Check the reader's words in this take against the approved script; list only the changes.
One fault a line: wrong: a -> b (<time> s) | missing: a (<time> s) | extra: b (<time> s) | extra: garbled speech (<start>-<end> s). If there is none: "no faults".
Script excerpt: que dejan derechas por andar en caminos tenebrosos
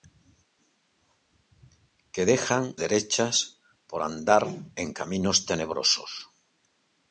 no faults